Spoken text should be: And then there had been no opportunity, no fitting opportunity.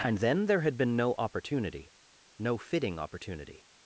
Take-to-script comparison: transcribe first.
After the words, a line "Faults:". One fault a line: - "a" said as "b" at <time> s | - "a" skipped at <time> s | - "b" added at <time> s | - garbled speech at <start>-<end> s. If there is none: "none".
And then there had been no opportunity, no fitting opportunity.
Faults:
none